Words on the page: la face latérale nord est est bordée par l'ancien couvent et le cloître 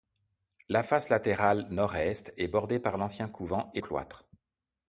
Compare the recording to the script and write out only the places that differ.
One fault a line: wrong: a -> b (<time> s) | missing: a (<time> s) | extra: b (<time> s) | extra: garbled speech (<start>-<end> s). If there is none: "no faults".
missing: le (3.8 s)